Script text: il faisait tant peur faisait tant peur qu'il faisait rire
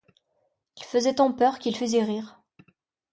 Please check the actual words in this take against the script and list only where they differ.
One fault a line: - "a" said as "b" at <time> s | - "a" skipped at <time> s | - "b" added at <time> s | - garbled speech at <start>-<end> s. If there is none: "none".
- "faisait tant peur" skipped at 1.6 s